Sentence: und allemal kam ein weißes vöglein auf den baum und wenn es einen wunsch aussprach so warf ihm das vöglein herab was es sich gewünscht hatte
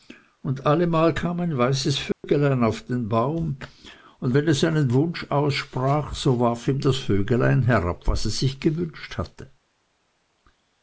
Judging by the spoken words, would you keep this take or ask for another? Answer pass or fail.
pass